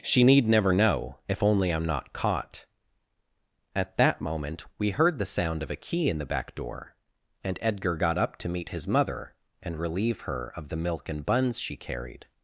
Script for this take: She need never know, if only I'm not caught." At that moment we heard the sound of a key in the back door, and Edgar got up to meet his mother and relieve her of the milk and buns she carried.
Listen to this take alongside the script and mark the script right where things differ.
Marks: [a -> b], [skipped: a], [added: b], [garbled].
She need never know, if only I'm not caught." At that moment we heard the sound of a key in the back door, and Edgar got up to meet his mother and relieve her of the milk and buns she carried.